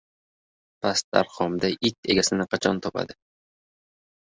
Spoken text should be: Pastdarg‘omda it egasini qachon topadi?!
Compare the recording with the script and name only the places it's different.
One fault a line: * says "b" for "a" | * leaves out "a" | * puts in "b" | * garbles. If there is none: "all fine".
all fine